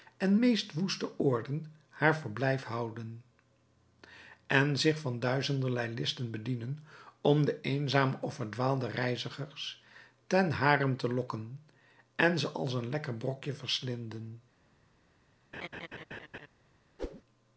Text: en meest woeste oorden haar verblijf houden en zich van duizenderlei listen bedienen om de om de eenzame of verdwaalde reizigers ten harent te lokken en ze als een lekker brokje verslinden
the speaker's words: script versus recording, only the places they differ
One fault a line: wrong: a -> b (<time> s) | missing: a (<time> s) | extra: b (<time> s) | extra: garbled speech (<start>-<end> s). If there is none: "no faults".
missing: om de (7.6 s)